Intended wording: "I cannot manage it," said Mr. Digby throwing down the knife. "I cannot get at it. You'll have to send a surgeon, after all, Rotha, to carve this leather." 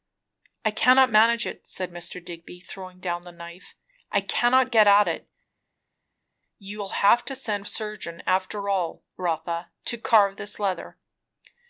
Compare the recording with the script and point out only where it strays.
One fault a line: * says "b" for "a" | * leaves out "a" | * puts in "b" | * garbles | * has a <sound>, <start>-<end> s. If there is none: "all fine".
all fine